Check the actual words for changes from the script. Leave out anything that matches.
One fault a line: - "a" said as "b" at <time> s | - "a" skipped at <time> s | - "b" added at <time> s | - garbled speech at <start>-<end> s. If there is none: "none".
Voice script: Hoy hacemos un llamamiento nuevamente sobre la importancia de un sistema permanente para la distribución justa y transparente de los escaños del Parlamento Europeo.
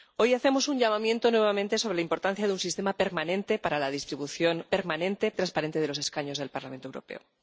- "justa" said as "permanente" at 4.7 s